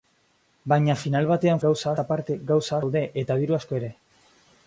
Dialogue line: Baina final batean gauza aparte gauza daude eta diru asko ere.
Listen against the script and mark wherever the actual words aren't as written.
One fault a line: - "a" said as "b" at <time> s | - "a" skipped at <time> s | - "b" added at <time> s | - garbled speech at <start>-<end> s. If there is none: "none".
none